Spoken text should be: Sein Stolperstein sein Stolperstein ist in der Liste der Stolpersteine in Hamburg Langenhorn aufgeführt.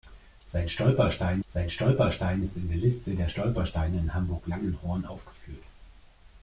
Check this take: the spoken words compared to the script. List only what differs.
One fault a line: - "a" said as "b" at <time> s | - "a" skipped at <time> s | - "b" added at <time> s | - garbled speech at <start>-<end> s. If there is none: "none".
none